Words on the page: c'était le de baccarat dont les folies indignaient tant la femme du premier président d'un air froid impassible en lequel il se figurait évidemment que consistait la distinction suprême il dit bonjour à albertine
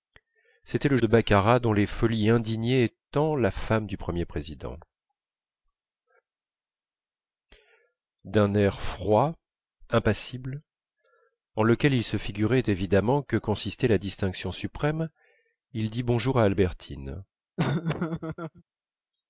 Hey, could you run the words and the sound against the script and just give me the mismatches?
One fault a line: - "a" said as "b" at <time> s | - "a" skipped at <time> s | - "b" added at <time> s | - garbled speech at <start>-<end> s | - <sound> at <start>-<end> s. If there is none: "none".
- laugh at 17.6-18.6 s